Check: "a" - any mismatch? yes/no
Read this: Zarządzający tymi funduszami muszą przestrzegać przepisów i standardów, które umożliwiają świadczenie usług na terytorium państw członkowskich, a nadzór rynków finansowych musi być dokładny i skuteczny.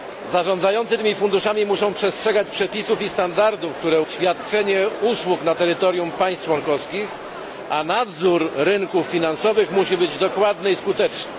no